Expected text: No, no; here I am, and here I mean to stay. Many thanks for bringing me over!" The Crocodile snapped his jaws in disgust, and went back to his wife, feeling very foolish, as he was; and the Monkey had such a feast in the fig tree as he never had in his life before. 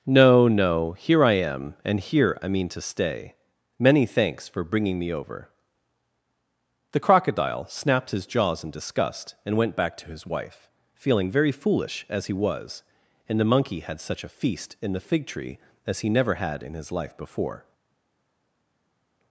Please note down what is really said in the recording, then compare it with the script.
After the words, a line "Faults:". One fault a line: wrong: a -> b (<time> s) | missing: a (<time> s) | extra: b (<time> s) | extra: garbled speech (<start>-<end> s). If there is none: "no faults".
No, no; here I am, and here I mean to stay. Many thanks for bringing me over!" The Crocodile snapped his jaws in disgust, and went back to his wife, feeling very foolish, as he was; and the Monkey had such a feast in the fig tree as he never had in his life before.
Faults:
no faults